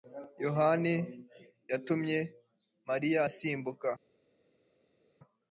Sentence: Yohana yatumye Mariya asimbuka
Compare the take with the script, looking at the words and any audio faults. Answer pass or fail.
pass